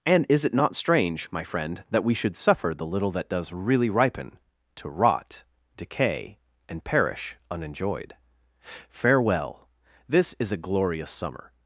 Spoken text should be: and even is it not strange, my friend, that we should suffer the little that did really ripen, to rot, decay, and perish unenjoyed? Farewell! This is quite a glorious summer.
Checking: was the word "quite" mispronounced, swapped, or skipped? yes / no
yes